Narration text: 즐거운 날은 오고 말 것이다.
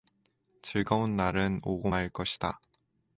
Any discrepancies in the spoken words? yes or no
no